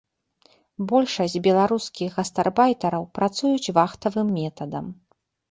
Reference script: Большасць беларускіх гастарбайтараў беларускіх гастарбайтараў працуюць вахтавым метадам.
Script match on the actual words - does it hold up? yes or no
no